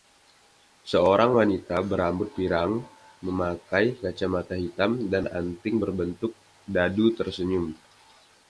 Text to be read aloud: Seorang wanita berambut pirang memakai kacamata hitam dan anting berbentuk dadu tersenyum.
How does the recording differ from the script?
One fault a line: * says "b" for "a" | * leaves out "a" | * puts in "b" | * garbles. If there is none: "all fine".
all fine